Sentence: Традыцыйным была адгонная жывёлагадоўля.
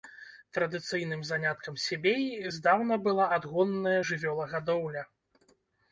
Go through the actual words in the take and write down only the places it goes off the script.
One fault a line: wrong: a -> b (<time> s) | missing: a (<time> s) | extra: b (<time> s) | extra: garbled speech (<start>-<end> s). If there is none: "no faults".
extra: заняткам себеі здаўна (1.3 s)